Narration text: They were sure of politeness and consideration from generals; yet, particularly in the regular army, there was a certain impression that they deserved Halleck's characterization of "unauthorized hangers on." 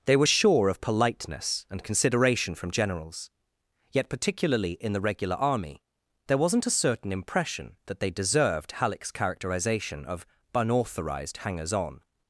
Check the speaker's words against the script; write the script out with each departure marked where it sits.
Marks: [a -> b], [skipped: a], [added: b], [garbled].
They were sure of politeness and consideration from generals; yet, particularly in the regular army, there [was -> wasn't] a certain impression that they deserved Halleck's characterization of "unauthorized hangers on."